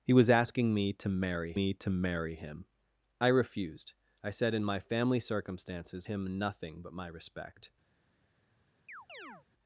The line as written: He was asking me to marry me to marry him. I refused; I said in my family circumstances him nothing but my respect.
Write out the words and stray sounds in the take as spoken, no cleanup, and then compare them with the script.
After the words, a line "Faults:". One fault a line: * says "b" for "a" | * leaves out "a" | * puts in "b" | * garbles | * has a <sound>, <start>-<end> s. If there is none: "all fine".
He was asking me to marry me to marry him. I refused; I said in my family circumstances him nothing but my respect.
Faults:
* has a chirp, 8.9-9.5 s